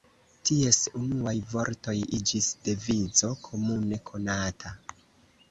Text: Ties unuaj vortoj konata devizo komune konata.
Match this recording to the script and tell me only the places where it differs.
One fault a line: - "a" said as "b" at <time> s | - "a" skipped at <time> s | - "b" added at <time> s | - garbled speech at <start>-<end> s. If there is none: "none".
- "konata" said as "iĝis" at 2.2 s